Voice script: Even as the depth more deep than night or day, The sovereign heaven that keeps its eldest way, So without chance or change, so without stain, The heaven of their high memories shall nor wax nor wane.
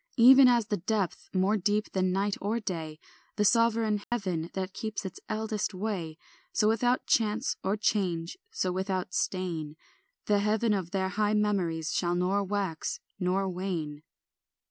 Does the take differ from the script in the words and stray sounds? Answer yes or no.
yes